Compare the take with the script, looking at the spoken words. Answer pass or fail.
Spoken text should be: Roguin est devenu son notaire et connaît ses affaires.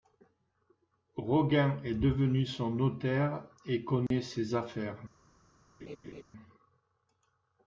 pass